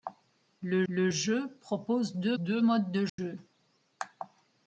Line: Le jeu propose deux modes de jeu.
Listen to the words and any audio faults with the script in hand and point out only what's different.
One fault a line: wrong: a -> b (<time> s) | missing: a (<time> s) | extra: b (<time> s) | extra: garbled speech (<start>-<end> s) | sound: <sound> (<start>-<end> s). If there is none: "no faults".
extra: le (0.9 s)
extra: deux (2.4 s)
sound: dropout (3.1-3.2 s)